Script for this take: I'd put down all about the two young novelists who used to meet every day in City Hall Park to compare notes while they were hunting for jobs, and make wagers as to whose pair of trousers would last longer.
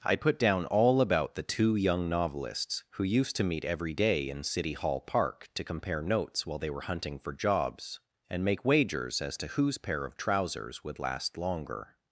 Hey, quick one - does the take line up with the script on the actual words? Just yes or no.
yes